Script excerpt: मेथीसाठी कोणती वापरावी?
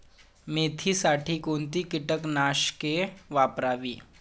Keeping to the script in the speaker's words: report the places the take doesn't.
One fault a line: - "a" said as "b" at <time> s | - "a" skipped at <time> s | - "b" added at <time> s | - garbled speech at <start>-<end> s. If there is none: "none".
- "कीटकनाशके" added at 1.8 s